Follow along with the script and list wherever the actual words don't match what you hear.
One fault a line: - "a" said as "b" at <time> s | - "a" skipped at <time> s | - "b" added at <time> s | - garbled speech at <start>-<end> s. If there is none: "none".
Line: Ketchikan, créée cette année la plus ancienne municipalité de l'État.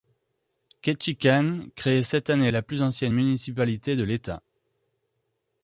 none